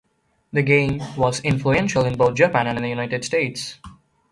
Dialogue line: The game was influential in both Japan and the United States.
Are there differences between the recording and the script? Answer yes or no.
no